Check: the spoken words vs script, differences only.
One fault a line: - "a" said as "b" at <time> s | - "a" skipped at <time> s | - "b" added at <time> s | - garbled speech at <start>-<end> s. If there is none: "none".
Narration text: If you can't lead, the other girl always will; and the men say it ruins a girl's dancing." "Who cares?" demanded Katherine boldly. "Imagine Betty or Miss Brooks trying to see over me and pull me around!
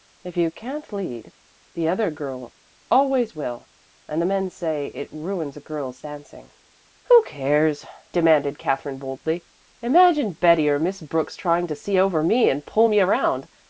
none